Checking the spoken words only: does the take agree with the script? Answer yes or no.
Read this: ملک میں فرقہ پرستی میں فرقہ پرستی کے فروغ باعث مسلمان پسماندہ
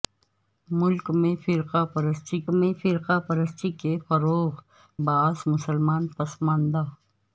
yes